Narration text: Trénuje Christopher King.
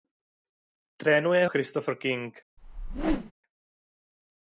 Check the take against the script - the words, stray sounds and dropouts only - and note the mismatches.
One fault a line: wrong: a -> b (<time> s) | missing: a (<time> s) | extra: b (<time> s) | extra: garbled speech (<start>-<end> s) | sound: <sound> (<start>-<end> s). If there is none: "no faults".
sound: whoosh (2.6-3.3 s)